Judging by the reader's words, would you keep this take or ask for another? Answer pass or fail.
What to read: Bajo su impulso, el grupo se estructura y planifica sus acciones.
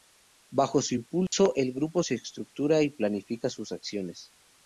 pass